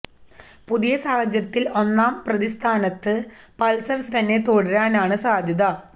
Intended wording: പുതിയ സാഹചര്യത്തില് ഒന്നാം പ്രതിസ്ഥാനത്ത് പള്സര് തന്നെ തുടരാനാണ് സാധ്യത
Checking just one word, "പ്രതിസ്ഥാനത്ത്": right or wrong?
right